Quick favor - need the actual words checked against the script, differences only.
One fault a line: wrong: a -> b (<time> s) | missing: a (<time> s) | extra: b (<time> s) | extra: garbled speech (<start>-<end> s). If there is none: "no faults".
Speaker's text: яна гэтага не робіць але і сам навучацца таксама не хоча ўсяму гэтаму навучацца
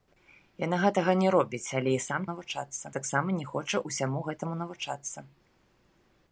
no faults